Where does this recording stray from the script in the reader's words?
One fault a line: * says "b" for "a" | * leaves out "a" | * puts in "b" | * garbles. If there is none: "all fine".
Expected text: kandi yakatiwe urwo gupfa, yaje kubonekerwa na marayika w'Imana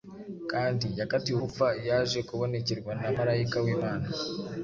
* leaves out "urwo"